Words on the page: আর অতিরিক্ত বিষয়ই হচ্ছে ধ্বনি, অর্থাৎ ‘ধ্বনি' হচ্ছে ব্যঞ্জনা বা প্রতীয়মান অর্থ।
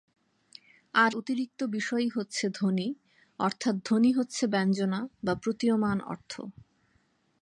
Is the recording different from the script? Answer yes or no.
no